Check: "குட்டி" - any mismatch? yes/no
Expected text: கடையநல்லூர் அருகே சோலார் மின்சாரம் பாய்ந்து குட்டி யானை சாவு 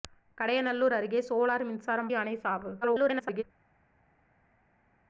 yes